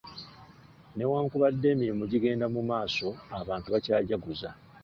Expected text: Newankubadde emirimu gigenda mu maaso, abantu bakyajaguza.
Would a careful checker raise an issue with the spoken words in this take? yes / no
no